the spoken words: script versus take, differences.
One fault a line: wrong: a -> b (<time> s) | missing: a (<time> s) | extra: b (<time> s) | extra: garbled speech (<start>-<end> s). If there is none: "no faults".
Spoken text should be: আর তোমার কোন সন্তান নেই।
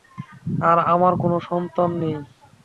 wrong: তোমার -> আমার (0.9 s)